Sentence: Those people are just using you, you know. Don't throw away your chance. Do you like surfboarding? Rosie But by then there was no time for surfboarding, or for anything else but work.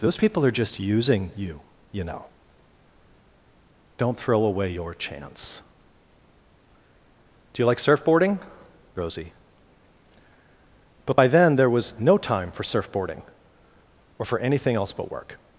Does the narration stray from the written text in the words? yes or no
no